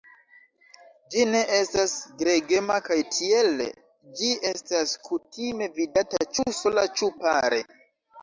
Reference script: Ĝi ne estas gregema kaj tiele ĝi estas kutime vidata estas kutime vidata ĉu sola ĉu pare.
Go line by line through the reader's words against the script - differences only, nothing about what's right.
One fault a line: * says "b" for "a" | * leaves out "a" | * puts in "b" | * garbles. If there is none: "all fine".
* leaves out "estas kutime vidata"